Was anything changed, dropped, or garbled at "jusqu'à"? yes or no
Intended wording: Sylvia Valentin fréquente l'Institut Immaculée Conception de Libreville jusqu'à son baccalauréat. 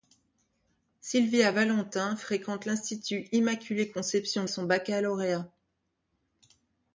yes